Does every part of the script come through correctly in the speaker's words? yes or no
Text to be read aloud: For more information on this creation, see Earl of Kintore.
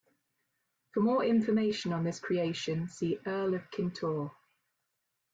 yes